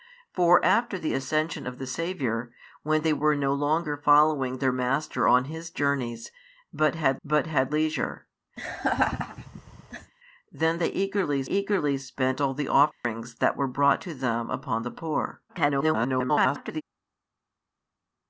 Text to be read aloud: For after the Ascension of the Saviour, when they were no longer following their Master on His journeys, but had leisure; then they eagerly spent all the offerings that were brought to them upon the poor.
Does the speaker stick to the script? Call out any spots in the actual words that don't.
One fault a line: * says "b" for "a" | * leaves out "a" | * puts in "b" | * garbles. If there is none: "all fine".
* puts in "but had"
* puts in "eagerly"
* garbles